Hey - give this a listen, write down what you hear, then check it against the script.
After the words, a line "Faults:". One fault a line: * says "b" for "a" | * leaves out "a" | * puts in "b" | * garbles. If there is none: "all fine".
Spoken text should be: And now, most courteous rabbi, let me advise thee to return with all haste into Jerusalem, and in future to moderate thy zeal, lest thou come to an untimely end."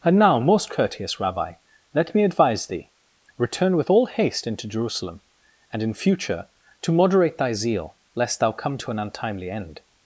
And now, most courteous rabbi, let me advise thee return with all haste into Jerusalem, and in future to moderate thy zeal, lest thou come to an untimely end."
Faults:
* leaves out "to"